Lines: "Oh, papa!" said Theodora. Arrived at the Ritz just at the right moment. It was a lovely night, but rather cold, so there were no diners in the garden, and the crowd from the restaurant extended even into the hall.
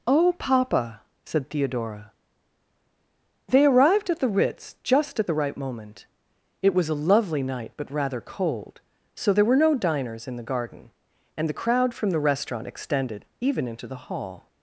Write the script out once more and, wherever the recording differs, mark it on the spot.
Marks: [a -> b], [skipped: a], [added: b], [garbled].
"Oh, papa!" said Theodora. [added: They] Arrived at the Ritz just at the right moment. It was a lovely night, but rather cold, so there were no diners in the garden, and the crowd from the restaurant extended even into the hall.